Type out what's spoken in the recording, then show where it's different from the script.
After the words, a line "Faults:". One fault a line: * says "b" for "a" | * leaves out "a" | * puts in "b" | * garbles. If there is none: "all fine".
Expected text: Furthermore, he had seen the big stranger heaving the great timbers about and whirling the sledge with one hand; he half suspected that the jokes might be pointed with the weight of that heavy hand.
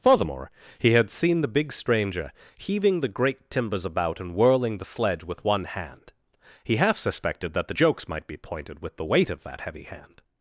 Furthermore, he had seen the big stranger heaving the great timbers about and whirling the sledge with one hand; he half suspected that the jokes might be pointed with the weight of that heavy hand.
Faults:
all fine